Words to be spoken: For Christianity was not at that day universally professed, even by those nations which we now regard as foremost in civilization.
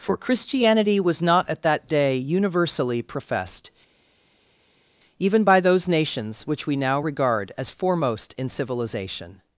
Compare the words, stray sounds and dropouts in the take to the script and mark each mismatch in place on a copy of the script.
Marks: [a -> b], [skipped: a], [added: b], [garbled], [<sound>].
For Christianity was not at that day universally professed, even by those nations which we now regard as foremost in civilization.